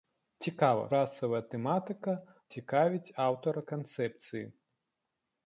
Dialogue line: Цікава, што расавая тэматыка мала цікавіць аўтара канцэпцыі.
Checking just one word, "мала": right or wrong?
wrong